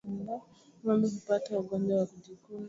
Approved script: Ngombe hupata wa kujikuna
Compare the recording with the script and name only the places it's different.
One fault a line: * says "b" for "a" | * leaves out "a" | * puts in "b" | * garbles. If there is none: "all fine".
* puts in "ugonjwa"